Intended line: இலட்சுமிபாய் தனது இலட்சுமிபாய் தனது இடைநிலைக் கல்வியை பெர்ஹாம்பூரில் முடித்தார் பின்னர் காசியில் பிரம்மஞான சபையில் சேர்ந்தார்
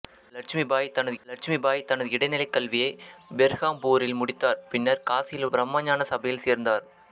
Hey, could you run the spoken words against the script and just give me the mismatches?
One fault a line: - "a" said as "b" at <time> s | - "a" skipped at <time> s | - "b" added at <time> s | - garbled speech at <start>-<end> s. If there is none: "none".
none